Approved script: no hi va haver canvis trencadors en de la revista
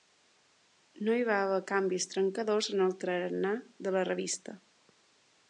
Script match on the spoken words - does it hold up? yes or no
no